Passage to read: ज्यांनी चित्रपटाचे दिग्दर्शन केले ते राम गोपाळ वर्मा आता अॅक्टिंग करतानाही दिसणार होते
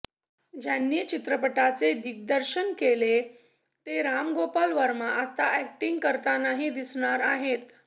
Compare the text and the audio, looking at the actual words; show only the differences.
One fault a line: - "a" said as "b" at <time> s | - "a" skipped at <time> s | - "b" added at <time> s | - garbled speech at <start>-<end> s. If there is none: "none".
- "होते" said as "आहेत" at 7.2 s